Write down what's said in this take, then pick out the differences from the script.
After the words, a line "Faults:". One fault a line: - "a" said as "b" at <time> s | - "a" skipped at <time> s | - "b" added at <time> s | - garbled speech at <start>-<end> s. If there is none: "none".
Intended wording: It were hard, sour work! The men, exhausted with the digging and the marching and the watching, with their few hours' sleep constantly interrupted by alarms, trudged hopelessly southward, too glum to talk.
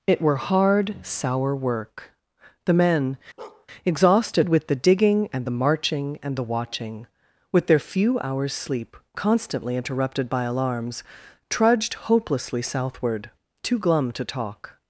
It were hard, sour work! The men, exhausted with the digging and the marching and the watching, with their few hours' sleep constantly interrupted by alarms, trudged hopelessly southward, too glum to talk.
Faults:
none